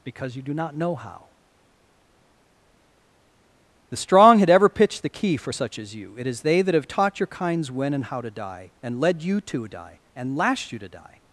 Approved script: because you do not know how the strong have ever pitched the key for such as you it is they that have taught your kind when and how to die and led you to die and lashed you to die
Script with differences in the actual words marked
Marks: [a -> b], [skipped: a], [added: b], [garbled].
because you do not know how the strong [have -> had] ever pitched the key for such as you it is they that have taught your [kind -> kinds] when and how to die and led you to die and lashed you to die